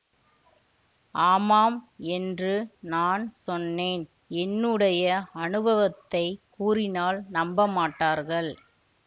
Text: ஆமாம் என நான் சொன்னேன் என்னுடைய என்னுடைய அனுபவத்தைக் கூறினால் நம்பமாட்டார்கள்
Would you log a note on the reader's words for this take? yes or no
yes